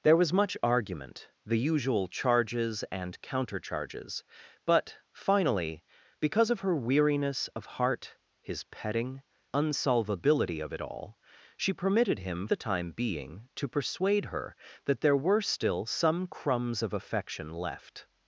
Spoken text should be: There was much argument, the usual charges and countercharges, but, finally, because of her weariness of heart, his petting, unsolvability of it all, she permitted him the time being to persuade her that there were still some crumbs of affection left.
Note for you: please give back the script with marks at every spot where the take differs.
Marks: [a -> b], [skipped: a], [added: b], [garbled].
There was much argument, the usual charges and countercharges, but, finally, because of her weariness of heart, his petting, unsolvability of it all, she permitted him the time being to persuade her that there were still some crumbs of affection left.